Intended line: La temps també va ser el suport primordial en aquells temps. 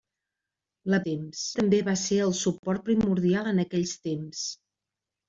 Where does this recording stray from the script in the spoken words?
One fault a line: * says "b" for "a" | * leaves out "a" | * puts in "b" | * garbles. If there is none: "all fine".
all fine